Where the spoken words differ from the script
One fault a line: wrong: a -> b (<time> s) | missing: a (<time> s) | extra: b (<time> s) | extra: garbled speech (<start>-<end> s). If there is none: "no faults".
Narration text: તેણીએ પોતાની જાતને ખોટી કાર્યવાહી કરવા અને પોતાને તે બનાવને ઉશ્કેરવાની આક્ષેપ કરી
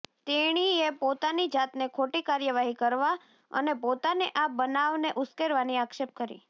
wrong: તે -> આ (4.4 s)